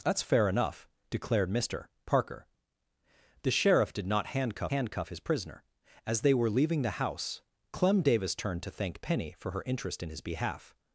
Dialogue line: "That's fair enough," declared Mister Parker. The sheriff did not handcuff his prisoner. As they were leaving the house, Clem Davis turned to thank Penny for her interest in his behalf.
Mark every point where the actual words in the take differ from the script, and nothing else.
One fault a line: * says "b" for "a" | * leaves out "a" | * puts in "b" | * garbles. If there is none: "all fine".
* puts in "handcuff"